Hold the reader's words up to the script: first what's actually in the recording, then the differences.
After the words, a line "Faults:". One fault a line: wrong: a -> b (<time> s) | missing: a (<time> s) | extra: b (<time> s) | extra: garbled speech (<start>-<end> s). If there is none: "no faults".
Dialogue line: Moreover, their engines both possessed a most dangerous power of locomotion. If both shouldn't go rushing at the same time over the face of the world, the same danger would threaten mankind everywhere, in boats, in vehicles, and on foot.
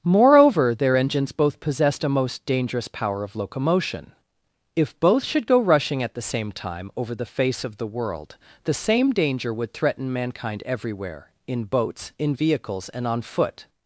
Moreover, their engines both possessed a most dangerous power of locomotion. If both should go rushing at the same time over the face of the world, the same danger would threaten mankind everywhere, in boats, in vehicles, and on foot.
Faults:
wrong: shouldn't -> should (5.2 s)